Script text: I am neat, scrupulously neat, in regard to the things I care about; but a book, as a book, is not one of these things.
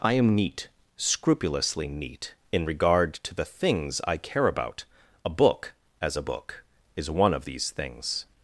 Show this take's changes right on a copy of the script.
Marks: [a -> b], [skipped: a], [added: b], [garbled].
I am neat, scrupulously neat, in regard to the things I care about; [skipped: but] a book, as a book, is [skipped: not] one of these things.